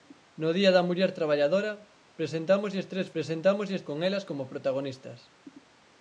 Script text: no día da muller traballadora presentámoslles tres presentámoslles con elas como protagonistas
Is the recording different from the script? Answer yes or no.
no